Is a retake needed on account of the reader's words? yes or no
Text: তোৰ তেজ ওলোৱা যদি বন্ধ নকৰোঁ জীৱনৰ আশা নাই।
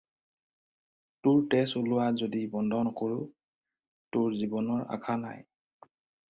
yes